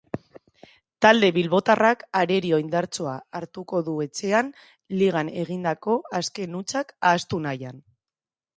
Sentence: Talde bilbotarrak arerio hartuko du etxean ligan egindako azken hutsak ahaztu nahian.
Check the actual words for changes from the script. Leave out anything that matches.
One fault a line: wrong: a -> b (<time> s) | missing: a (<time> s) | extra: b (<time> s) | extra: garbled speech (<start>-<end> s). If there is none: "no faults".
extra: indartsua (2.6 s)